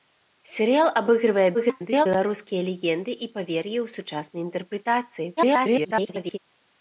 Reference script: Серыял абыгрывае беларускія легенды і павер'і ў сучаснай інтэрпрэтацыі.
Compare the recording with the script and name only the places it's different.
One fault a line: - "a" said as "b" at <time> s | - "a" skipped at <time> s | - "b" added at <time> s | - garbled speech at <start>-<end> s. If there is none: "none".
- garbled speech at 1.5-2.1 s
- garbled speech at 5.4-6.4 s